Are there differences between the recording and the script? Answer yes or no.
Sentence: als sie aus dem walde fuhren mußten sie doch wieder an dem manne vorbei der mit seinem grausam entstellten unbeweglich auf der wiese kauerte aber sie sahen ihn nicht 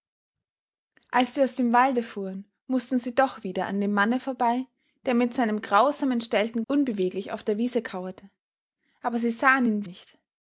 no